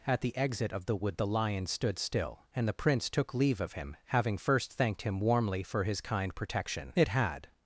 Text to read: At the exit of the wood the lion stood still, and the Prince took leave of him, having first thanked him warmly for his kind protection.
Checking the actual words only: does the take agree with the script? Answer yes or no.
no